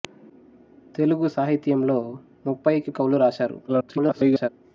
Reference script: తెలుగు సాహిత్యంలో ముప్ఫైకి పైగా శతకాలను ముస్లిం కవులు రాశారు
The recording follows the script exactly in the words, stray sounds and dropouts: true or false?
false